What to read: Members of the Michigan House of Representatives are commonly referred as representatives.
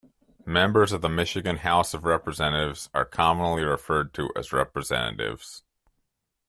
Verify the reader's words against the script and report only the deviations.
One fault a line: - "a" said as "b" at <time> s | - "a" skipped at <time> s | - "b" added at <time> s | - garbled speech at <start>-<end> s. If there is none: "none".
- "to" added at 4.1 s